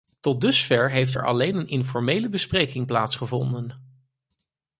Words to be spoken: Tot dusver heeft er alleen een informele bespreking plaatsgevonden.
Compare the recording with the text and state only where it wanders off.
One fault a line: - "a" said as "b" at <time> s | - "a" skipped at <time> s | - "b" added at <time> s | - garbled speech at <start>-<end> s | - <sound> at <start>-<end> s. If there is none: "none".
none